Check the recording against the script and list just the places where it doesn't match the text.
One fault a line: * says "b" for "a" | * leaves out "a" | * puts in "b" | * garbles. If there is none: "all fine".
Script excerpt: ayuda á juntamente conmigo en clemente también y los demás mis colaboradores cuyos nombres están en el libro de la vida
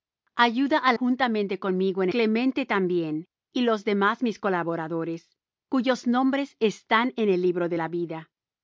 all fine